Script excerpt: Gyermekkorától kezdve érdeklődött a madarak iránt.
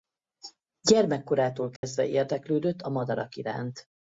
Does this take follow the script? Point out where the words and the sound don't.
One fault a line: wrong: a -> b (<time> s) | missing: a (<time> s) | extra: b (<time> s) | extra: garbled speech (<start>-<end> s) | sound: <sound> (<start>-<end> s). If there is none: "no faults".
sound: dropout (1.8-1.8 s)